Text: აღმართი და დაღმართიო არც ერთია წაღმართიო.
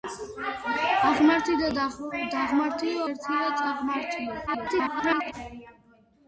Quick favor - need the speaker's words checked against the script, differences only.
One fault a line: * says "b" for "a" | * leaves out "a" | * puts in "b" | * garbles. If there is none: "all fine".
* leaves out "არც"
* garbles